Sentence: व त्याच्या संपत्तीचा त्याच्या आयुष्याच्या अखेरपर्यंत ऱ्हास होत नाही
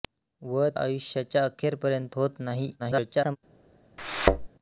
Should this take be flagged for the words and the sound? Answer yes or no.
yes